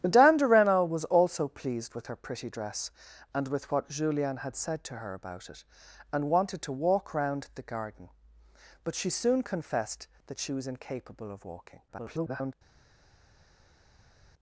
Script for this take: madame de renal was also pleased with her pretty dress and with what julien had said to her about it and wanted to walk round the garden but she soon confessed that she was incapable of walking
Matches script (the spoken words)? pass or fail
fail